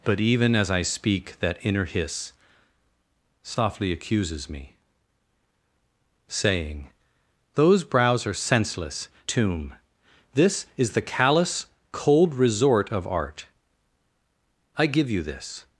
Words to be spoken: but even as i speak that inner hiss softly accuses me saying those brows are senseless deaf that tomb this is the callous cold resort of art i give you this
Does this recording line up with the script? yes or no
no